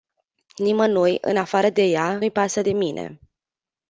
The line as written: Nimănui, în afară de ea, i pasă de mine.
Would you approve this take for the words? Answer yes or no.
yes